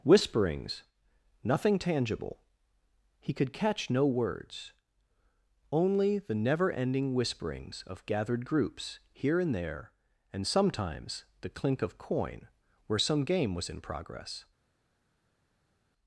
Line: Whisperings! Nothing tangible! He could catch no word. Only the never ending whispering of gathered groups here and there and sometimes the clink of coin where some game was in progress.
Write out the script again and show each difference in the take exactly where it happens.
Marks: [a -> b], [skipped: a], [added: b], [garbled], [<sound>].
Whisperings! Nothing tangible! He could catch no [word. -> words] Only the never ending [whispering -> whisperings] of gathered groups here and there and sometimes the clink of coin where some game was in progress.